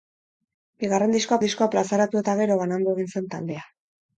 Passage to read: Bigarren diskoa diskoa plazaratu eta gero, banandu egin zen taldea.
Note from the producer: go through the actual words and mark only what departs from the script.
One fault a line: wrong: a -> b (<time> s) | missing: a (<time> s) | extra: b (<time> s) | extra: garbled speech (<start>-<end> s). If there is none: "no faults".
no faults